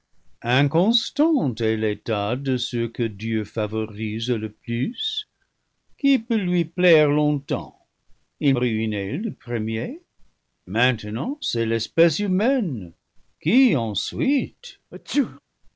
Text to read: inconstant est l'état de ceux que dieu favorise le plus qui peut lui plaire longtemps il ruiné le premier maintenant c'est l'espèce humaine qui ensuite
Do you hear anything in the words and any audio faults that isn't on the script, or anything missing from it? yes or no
yes